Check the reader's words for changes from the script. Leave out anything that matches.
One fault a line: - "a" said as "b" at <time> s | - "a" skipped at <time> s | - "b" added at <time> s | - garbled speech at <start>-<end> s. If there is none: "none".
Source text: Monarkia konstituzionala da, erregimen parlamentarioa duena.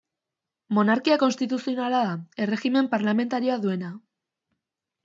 none